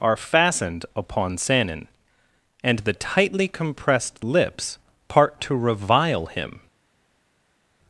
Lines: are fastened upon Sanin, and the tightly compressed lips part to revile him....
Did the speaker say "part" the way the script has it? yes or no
yes